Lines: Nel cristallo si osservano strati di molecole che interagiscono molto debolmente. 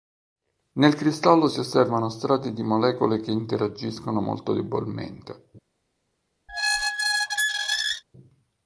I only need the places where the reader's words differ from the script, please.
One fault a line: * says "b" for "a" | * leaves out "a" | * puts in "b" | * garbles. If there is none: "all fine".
all fine